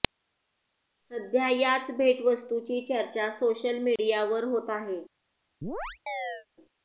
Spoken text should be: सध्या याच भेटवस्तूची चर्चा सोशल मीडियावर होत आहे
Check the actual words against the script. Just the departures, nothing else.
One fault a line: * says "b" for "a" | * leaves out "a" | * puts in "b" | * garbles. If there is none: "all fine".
all fine